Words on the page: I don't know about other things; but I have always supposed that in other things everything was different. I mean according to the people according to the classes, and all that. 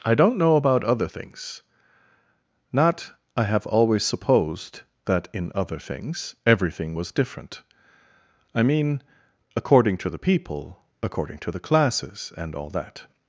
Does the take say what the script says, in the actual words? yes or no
no